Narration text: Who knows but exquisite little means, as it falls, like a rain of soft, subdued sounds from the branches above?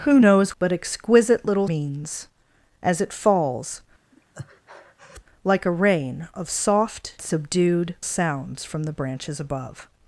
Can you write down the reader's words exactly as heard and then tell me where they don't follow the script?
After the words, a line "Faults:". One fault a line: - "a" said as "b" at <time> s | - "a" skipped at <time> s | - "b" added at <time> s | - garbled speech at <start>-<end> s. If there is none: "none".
Who knows but exquisite little means, as it falls, like a rain of soft, subdued sounds from the branches above?
Faults:
none